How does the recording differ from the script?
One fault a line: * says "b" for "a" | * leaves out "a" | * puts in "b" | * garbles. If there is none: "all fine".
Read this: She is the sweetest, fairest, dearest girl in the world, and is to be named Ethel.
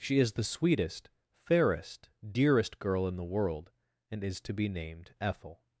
all fine